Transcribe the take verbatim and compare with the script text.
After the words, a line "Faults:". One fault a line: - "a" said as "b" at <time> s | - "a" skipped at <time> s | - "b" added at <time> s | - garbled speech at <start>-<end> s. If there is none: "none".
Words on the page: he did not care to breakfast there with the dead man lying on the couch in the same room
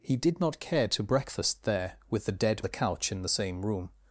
he did not care to breakfast there with the dead the couch in the same room
Faults:
- "man lying on" skipped at 2.6 s